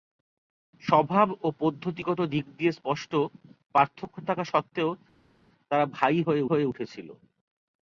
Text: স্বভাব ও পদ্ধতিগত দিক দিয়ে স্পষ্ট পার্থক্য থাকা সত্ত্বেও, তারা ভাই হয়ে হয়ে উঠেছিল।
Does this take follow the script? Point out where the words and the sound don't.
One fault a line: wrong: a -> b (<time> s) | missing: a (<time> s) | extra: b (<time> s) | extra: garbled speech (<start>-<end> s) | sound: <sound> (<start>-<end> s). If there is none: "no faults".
no faults